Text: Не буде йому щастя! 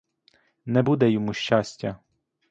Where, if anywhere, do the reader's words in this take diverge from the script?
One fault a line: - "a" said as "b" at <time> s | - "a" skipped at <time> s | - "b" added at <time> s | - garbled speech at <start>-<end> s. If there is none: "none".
none